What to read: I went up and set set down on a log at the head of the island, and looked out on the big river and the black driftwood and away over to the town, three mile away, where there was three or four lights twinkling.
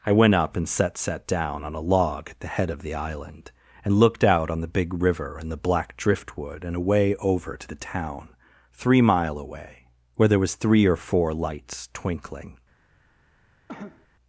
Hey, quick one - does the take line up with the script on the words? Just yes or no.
yes